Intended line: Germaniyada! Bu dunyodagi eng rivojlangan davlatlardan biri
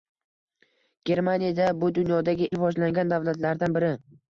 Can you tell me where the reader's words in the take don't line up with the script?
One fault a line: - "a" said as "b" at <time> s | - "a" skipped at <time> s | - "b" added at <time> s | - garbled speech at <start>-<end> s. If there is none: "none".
- "eng" skipped at 2.5 s